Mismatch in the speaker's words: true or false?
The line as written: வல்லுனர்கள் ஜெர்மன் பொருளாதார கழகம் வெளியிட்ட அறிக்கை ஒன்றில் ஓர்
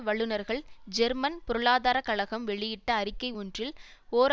false